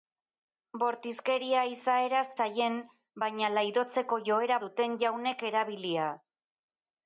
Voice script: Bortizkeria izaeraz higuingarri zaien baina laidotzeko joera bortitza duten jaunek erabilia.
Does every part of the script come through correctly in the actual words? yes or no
no